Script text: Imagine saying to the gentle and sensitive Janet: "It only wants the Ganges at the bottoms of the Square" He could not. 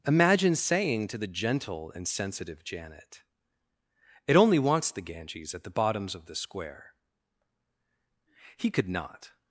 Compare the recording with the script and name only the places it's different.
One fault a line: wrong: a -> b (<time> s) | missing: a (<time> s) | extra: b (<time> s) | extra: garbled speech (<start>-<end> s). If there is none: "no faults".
no faults